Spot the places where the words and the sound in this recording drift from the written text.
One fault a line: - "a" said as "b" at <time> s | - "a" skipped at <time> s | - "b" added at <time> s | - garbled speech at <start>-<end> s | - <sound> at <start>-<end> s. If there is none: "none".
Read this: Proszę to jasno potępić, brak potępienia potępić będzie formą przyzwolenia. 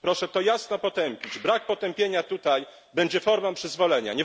- "potępić" said as "tutaj" at 2.2 s